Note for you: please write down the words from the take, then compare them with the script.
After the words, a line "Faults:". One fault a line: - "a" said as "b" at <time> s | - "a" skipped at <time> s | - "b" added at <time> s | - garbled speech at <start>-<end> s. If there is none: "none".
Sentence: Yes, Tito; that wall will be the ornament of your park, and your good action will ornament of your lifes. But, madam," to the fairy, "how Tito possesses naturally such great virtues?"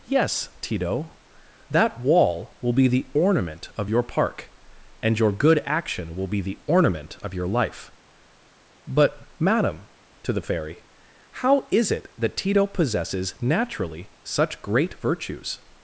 Yes, Tito; that wall will be the ornament of your park, and your good action will be the ornament of your life. But, madam," to the fairy, "how is it that Tito possesses naturally such great virtues?"
Faults:
- "be the" added at 6.3 s
- "lifes" said as "life" at 7.5 s
- "is it that" added at 11.7 s